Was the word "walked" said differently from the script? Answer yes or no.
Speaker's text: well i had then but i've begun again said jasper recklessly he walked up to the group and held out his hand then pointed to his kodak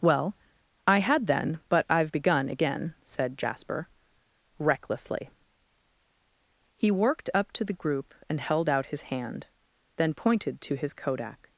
yes